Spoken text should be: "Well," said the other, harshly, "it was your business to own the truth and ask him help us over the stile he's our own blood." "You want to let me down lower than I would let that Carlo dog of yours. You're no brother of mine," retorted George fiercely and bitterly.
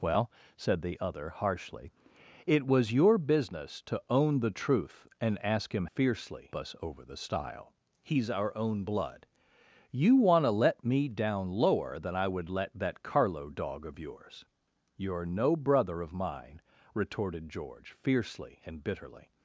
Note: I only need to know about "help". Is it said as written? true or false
false